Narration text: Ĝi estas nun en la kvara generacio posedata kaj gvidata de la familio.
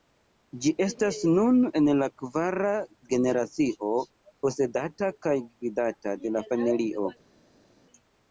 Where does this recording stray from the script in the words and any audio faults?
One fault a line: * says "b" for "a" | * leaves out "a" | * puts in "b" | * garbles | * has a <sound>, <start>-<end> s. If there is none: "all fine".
all fine